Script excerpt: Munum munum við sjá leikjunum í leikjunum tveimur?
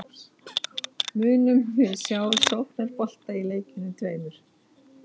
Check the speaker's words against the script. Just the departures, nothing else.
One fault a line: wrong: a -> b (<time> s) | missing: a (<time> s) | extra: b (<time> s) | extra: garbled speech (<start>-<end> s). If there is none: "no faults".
missing: munum (1.6 s)
wrong: leikjunum -> sóknarbolta (2.5 s)